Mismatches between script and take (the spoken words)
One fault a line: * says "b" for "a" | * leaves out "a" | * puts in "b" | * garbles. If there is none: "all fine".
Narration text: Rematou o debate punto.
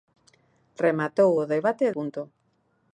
all fine